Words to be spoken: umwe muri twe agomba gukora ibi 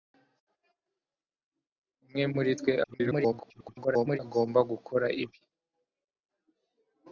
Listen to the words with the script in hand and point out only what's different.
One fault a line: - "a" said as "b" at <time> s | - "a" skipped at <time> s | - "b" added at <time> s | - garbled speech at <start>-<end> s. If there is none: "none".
- garbled speech at 2.8-4.2 s